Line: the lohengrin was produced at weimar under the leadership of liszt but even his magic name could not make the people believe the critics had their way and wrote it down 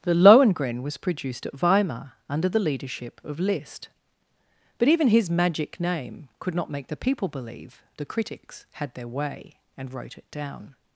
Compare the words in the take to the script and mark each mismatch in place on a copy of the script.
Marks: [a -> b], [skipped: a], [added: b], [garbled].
the lohengrin was produced at weimar under the leadership of liszt but even his magic name could not make the people believe the critics had their way and wrote it down